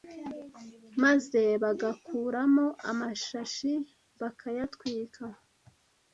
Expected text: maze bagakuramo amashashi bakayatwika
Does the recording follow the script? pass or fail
pass